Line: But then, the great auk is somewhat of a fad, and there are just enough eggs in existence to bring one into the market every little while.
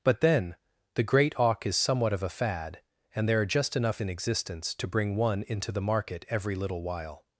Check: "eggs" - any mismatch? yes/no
yes